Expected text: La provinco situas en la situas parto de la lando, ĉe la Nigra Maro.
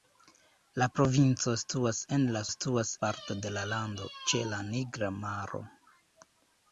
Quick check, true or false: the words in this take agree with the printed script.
true